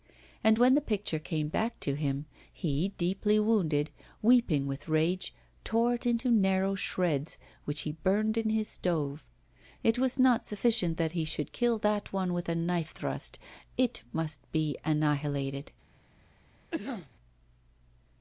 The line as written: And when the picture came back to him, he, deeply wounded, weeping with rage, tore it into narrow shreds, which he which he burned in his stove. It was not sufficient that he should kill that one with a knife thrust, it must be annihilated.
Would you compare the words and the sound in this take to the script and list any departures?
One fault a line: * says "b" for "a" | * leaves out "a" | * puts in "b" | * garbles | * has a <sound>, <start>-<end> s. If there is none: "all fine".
* leaves out "which he"
* has a cough, 16.7-17.1 s